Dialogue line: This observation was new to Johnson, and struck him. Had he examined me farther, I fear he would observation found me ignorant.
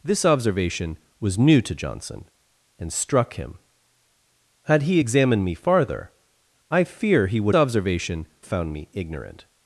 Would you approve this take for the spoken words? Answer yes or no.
yes